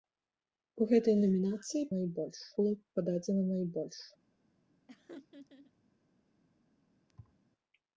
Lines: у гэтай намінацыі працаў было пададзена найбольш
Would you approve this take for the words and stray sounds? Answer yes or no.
no